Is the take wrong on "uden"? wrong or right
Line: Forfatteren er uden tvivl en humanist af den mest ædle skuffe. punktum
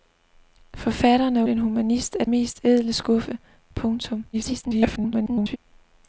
wrong